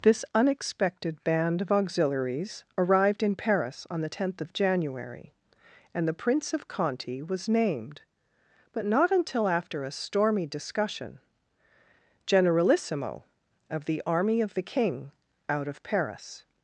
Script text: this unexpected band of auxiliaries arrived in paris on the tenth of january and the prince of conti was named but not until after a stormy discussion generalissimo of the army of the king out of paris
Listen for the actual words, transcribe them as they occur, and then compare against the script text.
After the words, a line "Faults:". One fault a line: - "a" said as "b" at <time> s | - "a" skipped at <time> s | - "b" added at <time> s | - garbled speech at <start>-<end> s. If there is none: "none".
this unexpected band of auxiliaries arrived in paris on the tenth of january and the prince of conti was named but not until after a stormy discussion generalissimo of the army of the king out of paris
Faults:
none